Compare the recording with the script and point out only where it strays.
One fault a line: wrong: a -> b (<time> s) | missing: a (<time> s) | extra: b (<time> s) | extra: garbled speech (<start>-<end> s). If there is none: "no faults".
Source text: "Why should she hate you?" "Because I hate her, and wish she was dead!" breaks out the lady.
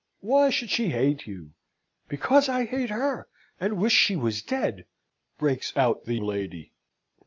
no faults